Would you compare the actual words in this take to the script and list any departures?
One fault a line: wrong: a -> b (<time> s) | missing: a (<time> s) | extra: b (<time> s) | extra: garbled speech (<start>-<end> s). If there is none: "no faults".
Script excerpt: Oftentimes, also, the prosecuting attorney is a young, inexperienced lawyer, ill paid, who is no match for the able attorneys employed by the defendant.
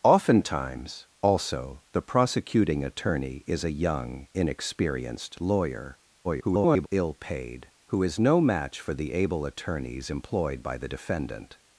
extra: garbled speech (6.2-6.9 s)